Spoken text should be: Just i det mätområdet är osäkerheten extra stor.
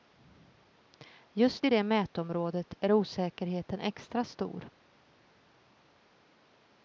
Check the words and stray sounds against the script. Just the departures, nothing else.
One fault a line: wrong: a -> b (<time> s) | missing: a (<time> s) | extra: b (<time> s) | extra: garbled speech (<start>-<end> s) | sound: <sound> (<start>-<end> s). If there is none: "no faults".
no faults